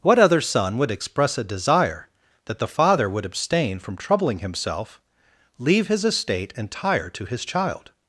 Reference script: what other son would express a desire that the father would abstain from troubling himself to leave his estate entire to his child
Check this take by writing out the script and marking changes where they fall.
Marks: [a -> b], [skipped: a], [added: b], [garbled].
what other son would express a desire that the father would abstain from troubling himself [skipped: to] leave his estate entire to his child